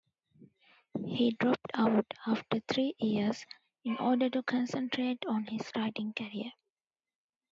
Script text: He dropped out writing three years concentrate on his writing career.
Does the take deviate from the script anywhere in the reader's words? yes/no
yes